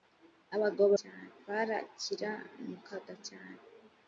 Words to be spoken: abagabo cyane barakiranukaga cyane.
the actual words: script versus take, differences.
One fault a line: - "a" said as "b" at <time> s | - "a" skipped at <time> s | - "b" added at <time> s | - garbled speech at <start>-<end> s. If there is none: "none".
none